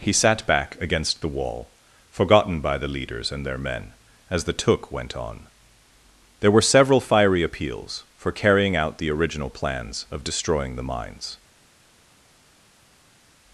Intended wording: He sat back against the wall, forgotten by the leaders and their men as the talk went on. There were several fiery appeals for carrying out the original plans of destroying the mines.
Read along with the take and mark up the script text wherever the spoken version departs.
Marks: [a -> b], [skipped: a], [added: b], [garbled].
He sat back against the wall, forgotten by the leaders and their men as the [talk -> took] went on. There were several fiery appeals for carrying out the original plans of destroying the mines.